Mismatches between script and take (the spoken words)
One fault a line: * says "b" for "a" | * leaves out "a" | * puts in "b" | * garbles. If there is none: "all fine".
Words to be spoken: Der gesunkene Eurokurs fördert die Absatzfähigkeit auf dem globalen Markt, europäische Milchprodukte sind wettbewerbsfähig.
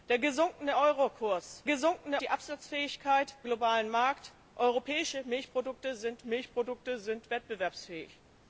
* says "gesunkene" for "fördert"
* leaves out "auf dem"
* puts in "Milchprodukte sind"